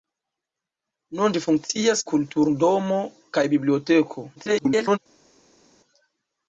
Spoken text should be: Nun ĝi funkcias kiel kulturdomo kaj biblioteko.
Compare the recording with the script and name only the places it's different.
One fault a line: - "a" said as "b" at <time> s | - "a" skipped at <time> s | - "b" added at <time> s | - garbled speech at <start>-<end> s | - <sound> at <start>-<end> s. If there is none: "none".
- "kiel" skipped at 2.0 s
- garbled speech at 4.3-5.0 s